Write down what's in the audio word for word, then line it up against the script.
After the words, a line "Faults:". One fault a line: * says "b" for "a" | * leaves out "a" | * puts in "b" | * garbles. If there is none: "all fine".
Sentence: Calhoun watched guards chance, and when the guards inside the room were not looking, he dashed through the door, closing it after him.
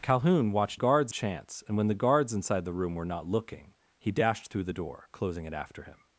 Calhoun watched guards chance, and when the guards inside the room were not looking, he dashed through the door, closing it after him.
Faults:
all fine